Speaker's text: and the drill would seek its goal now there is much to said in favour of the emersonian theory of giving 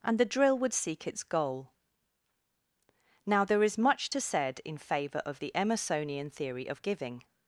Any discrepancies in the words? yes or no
no